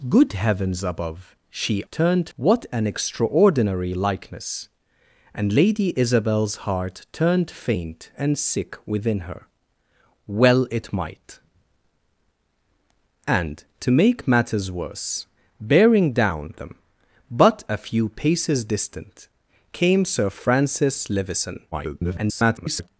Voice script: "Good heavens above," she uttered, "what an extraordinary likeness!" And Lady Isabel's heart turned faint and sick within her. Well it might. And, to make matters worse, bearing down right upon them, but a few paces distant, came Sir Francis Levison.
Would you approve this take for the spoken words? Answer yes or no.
no